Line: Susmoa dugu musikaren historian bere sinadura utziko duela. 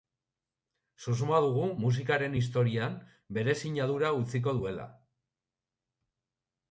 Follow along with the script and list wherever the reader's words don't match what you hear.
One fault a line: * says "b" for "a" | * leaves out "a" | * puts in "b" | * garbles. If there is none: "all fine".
all fine